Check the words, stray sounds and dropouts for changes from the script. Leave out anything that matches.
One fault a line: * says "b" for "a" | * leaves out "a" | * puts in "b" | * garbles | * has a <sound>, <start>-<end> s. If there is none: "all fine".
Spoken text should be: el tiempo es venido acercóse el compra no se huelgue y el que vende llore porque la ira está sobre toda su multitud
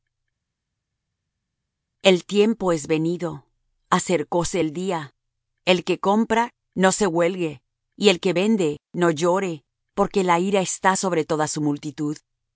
* puts in "día el que"
* puts in "no"